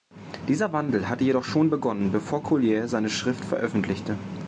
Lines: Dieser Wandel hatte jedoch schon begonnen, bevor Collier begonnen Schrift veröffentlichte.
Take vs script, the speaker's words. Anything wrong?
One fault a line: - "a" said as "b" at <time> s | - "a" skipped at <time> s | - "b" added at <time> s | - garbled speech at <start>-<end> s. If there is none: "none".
- "begonnen" said as "seine" at 2.9 s